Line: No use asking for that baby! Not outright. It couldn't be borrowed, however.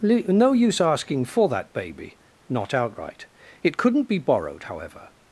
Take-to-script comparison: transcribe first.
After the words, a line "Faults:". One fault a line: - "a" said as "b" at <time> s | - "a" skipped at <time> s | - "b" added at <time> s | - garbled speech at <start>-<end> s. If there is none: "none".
No use asking for that baby! Not outright. It couldn't be borrowed, however.
Faults:
none